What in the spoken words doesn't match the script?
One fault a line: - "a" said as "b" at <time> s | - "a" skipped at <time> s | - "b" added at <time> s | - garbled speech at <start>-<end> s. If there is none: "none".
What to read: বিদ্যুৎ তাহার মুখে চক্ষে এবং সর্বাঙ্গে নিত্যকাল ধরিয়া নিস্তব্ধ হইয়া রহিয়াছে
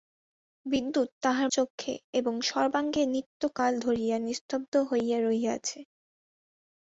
- "মুখে" skipped at 1.5 s